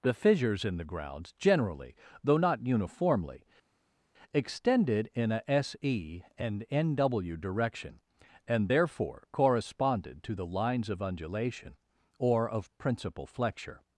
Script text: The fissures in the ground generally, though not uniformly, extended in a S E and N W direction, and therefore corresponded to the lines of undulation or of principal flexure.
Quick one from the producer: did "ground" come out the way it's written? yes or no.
no